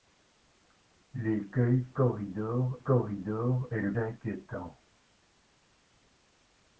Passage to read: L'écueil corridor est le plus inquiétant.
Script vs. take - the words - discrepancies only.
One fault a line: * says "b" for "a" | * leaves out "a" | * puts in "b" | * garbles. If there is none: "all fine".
* puts in "corridor"
* leaves out "plus"